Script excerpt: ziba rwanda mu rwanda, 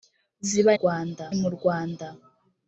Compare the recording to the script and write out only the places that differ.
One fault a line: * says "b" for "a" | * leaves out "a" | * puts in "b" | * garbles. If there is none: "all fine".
all fine